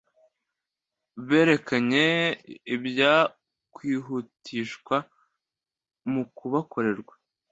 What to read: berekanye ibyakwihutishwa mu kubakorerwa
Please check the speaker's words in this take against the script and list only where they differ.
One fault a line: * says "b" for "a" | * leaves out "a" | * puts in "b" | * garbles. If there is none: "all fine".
all fine